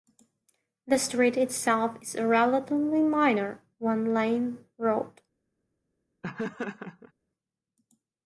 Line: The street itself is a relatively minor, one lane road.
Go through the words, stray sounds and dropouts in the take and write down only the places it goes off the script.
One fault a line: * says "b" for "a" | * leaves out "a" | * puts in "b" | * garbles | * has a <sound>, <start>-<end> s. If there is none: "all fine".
* has a laugh, 6.2-7.1 s